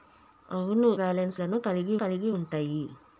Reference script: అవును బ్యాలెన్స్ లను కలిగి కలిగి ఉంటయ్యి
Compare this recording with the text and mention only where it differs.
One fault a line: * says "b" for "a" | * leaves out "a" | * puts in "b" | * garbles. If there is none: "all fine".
all fine